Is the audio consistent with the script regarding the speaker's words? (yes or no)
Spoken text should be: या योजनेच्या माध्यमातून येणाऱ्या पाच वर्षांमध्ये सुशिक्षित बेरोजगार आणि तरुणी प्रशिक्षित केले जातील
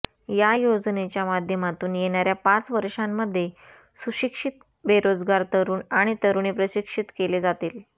no